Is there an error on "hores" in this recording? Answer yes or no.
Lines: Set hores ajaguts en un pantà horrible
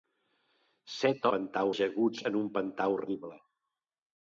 yes